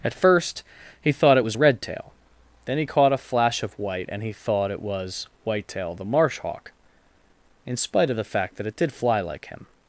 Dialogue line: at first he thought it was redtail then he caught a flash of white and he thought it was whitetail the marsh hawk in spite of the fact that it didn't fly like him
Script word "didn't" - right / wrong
wrong